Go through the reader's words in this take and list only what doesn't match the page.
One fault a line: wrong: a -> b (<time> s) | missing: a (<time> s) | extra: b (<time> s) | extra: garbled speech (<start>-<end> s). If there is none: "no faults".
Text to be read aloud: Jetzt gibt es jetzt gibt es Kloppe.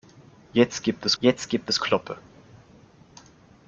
no faults